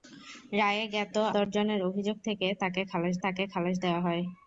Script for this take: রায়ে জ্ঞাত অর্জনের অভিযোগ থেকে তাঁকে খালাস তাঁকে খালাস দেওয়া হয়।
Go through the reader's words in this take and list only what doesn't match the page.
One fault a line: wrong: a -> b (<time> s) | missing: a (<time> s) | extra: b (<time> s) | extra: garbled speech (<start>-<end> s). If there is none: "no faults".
no faults